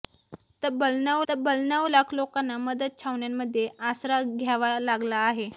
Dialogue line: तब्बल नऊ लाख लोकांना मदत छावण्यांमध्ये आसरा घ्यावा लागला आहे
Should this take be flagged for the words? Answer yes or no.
yes